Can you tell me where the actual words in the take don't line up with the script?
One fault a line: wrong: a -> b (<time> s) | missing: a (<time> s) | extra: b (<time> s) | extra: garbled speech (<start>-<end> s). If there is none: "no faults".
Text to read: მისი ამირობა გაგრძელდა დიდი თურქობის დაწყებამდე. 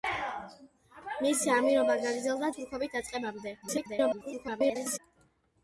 missing: დიდი (2.5 s)
extra: garbled speech (3.6-5.0 s)